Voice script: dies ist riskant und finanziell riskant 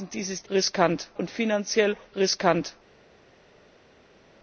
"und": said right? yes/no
yes